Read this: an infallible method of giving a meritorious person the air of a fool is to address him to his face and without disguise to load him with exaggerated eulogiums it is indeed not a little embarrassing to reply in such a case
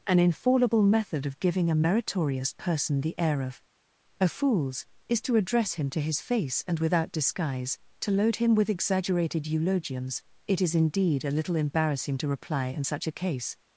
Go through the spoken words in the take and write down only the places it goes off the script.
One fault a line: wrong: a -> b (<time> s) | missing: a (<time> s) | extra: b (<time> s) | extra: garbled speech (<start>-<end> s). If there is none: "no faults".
wrong: fool -> fools (4.3 s)
missing: not (11.3 s)